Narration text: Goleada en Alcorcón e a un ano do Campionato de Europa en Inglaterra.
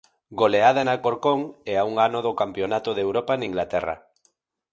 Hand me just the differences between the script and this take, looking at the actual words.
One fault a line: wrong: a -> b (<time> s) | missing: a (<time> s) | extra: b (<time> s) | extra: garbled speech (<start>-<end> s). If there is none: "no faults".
no faults